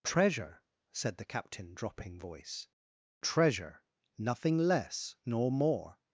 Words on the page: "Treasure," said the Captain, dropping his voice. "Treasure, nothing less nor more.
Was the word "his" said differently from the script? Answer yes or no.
yes